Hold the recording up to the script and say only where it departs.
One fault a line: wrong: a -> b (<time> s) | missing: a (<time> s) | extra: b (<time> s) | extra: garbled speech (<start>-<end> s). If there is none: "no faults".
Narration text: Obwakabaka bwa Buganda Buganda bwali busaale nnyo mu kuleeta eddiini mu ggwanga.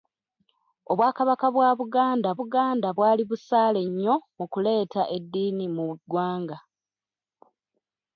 no faults